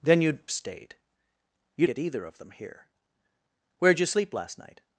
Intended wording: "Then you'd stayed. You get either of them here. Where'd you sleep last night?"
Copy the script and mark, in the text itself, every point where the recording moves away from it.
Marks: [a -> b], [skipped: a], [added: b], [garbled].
"Then you'd stayed. You get either of them here. Where'd you sleep last night?"